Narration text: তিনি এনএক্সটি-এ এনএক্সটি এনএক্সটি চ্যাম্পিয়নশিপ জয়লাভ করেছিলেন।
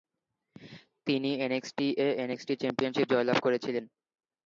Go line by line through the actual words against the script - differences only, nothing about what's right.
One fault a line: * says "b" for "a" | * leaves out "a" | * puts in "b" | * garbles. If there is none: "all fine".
* leaves out "এনএক্সটি"